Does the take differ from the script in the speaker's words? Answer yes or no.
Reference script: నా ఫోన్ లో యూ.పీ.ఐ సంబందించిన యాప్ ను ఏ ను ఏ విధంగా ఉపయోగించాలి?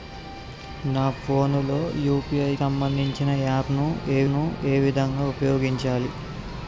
no